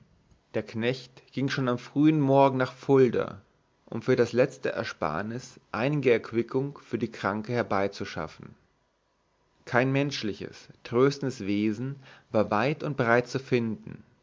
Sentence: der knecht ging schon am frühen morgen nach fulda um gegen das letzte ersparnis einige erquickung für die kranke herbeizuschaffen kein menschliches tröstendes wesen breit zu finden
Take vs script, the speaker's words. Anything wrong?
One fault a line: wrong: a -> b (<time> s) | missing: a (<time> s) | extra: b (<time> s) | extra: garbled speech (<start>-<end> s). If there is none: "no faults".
wrong: gegen -> für (4.0 s)
extra: war weit und (12.3 s)